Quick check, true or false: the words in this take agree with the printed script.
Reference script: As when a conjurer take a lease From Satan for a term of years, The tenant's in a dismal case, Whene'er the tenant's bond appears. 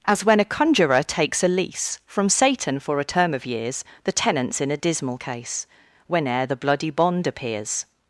false